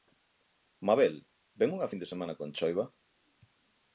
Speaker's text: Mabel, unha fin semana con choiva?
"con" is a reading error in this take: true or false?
false